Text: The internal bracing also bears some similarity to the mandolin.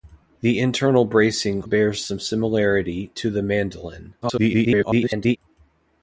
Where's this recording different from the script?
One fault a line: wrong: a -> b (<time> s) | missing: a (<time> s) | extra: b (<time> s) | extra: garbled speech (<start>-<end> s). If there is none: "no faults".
missing: also (1.6 s)
extra: garbled speech (4.2-5.4 s)